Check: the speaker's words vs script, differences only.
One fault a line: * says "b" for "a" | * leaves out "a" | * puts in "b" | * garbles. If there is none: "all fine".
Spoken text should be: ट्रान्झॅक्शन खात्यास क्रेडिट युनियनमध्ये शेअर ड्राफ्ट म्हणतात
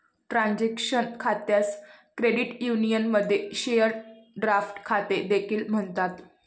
* puts in "खाते देखील"